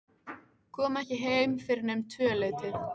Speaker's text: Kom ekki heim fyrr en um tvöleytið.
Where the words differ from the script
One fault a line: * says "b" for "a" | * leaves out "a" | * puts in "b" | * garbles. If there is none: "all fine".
all fine